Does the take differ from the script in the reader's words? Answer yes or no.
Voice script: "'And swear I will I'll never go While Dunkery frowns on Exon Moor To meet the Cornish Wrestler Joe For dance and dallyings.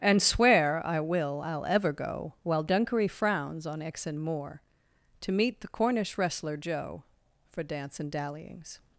yes